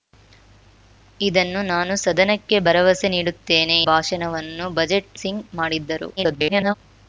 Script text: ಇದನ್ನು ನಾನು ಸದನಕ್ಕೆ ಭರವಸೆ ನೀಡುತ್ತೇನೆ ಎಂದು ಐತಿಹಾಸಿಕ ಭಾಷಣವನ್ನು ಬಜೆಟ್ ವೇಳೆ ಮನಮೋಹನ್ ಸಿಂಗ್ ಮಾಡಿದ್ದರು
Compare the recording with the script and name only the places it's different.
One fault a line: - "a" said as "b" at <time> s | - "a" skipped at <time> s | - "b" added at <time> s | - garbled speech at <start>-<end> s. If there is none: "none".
- "ಎಂದು ಐತಿಹಾಸಿಕ" skipped at 3.8 s
- "ವೇಳೆ ಮನಮೋಹನ್" skipped at 5.2 s
- garbled speech at 6.2-6.7 s